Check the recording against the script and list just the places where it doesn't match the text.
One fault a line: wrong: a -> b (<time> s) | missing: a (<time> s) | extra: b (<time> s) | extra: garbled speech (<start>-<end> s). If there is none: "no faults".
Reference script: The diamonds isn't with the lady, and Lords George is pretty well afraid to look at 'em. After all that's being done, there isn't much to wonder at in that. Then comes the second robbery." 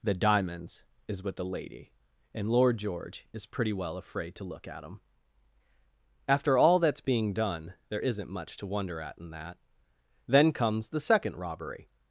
wrong: isn't -> is (1.1 s)
wrong: Lords -> Lord (2.5 s)